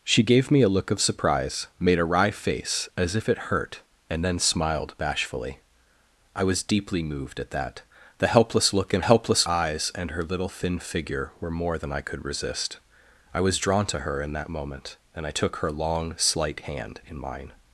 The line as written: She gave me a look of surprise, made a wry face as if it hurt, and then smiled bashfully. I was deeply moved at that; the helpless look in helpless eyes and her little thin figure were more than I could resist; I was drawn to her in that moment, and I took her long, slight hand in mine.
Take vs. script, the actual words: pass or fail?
pass